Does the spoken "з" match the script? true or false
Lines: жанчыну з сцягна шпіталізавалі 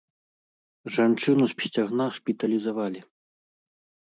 true